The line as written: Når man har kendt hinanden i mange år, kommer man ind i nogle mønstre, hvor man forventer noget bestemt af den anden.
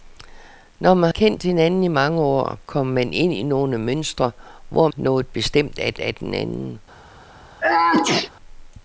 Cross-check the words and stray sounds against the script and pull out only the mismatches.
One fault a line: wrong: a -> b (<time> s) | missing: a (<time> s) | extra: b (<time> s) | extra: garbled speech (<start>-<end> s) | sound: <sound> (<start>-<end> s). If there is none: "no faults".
missing: har (1.1 s)
missing: man forventer (4.9 s)
extra: af (6.0 s)
sound: sneeze (7.6-8.3 s)